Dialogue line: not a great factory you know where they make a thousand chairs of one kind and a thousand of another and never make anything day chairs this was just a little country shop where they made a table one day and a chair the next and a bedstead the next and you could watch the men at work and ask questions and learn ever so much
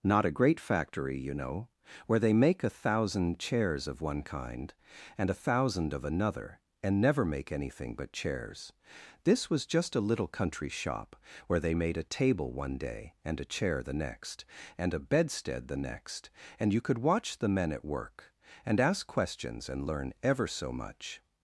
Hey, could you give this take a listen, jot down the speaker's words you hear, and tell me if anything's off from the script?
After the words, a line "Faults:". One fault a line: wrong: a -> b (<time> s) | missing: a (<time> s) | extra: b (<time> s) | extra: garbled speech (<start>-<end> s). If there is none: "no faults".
not a great factory you know where they make a thousand chairs of one kind and a thousand of another and never make anything but chairs this was just a little country shop where they made a table one day and a chair the next and a bedstead the next and you could watch the men at work and ask questions and learn ever so much
Faults:
wrong: day -> but (8.0 s)